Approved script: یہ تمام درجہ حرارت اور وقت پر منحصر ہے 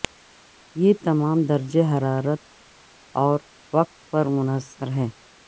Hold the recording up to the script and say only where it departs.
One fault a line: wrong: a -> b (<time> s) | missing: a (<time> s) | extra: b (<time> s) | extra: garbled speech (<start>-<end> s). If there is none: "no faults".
no faults